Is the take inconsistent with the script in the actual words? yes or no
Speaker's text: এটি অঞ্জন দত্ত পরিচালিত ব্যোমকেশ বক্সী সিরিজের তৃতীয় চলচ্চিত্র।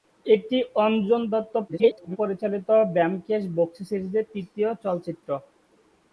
yes